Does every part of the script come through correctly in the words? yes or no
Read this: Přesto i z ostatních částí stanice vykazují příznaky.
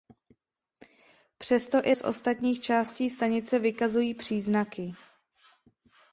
yes